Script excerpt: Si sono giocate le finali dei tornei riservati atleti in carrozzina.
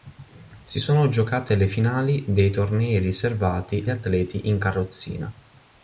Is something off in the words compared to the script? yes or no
no